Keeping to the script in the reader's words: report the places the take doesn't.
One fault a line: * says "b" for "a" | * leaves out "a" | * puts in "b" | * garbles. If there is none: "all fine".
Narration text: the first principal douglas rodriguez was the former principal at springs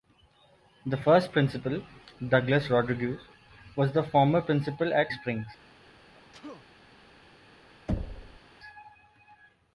all fine